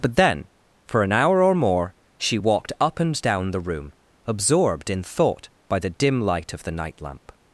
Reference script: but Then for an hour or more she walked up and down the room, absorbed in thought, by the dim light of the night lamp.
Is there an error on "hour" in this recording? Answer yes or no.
no